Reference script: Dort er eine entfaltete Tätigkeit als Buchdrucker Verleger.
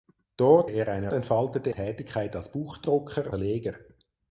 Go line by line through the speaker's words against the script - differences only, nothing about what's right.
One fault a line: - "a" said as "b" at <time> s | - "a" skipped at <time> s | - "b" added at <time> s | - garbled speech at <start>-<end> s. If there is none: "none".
none